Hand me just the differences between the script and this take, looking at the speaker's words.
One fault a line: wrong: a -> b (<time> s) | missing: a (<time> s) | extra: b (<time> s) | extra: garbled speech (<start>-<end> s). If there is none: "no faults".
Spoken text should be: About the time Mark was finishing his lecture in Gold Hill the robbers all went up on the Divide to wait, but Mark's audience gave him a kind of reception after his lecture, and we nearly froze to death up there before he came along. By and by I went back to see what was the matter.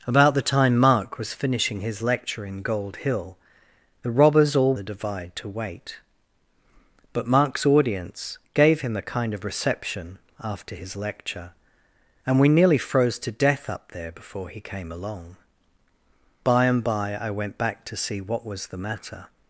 missing: went up on (4.7 s)